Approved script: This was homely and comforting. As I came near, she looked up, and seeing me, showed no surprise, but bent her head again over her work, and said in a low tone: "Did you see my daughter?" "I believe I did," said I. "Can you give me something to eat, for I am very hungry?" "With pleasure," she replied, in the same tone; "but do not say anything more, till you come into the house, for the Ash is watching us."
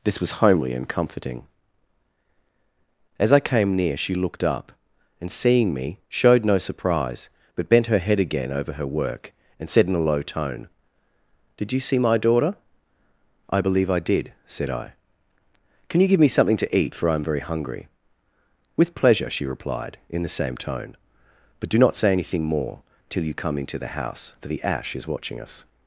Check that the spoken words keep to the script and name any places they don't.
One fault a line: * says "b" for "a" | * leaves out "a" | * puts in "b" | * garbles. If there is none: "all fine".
all fine